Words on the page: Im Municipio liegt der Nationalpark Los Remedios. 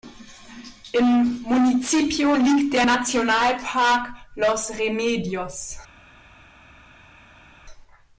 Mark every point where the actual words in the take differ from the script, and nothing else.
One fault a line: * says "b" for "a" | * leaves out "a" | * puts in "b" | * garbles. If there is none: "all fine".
all fine